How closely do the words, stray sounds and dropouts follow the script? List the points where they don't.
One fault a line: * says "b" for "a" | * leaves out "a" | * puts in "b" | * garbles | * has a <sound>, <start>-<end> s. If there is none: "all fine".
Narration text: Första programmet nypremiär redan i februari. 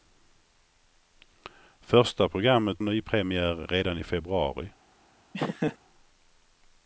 * has a laugh, 5.3-5.8 s